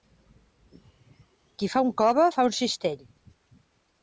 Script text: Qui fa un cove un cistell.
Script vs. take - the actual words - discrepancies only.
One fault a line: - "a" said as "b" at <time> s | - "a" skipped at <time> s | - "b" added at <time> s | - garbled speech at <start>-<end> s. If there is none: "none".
- "fa" added at 2.4 s